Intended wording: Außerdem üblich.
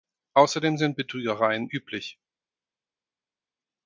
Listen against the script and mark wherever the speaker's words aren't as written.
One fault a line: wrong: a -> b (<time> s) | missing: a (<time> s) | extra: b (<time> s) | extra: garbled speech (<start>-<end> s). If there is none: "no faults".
extra: sind Betrügereien (0.8 s)